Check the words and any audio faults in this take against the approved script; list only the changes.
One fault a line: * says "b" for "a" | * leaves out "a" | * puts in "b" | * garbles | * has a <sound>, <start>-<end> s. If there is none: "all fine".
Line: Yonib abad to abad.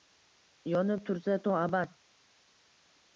* says "tursa" for "abad"